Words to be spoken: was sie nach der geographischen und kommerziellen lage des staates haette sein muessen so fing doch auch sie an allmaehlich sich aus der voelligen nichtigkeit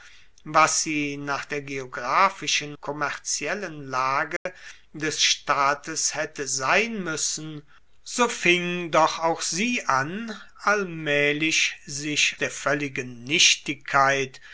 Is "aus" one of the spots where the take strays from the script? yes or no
yes